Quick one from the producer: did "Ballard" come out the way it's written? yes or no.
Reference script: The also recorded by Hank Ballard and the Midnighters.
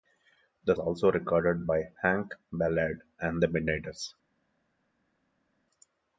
yes